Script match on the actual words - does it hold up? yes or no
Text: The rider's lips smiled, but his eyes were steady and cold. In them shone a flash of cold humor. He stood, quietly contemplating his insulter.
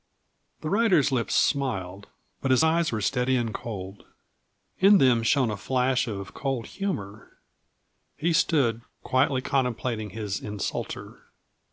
yes